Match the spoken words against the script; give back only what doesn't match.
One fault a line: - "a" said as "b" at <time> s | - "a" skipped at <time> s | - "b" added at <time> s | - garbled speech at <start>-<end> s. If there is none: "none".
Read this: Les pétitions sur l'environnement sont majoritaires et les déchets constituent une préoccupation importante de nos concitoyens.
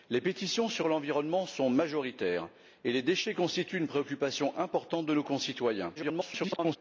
- garbled speech at 5.9-6.8 s